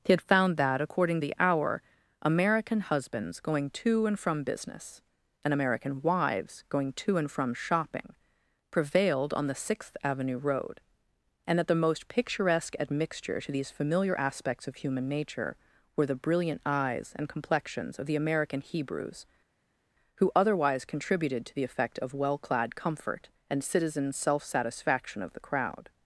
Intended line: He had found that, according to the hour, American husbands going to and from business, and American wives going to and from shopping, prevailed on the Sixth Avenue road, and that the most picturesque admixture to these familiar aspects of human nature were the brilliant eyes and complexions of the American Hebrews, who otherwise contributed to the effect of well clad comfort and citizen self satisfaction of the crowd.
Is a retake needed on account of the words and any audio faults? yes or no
yes